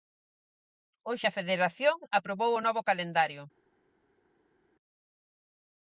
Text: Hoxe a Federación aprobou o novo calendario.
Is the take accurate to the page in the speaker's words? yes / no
yes